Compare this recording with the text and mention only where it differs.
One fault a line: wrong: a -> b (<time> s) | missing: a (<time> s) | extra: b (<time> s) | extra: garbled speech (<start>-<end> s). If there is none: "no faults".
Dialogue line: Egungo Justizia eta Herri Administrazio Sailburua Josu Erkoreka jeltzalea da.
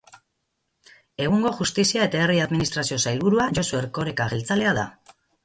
no faults